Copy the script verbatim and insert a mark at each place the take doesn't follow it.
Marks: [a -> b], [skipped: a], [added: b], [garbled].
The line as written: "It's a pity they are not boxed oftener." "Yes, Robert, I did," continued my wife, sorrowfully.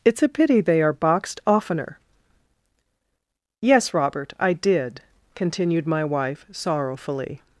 "It's a pity they are [skipped: not] boxed oftener." "Yes, Robert, I did," continued my wife, sorrowfully.